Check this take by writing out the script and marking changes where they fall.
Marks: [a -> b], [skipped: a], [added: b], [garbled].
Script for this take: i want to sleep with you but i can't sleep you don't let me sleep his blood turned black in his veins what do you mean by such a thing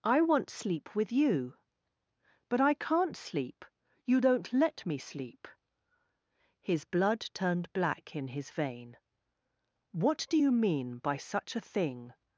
i want [skipped: to] sleep with you but i can't sleep you don't let me sleep his blood turned black in his [veins -> vein] what do you mean by such a thing